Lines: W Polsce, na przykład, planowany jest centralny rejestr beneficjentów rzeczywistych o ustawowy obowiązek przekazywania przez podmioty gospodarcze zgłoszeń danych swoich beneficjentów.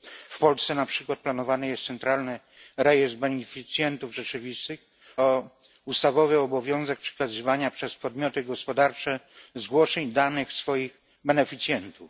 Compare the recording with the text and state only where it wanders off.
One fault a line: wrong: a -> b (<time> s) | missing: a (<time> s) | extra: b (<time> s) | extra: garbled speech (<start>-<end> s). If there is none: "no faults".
no faults